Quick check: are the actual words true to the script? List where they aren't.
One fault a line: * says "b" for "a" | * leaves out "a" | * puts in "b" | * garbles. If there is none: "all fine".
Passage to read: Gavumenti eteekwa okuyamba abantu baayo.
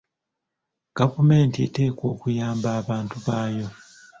all fine